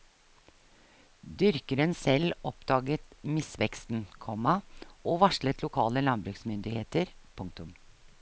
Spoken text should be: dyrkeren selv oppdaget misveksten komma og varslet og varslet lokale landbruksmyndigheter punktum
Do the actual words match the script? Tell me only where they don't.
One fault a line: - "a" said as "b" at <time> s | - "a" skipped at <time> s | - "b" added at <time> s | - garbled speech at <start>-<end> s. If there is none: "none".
- "og varslet" skipped at 5.6 s